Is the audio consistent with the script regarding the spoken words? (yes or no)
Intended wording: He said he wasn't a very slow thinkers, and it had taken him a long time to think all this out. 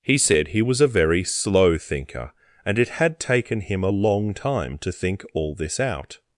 no